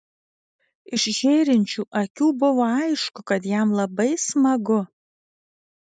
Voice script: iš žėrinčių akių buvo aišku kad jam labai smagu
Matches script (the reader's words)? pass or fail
pass